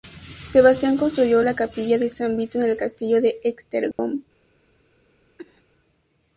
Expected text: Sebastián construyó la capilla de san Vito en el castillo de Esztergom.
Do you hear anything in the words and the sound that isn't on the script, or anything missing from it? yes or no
yes